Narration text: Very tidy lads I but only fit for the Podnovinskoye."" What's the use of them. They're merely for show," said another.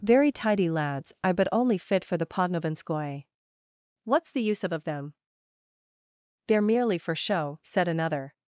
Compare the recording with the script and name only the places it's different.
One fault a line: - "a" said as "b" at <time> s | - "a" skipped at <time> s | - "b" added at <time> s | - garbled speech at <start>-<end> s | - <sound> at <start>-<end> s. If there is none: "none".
- "of" added at 4.7 s